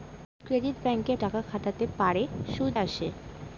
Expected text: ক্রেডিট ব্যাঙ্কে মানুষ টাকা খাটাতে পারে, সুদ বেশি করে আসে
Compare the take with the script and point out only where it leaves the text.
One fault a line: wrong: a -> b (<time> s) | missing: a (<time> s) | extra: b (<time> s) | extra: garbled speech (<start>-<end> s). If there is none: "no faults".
missing: মানুষ (1.1 s)
missing: বেশি করে (2.7 s)